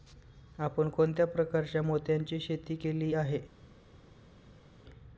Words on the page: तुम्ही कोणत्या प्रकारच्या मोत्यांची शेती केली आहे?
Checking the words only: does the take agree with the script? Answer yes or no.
no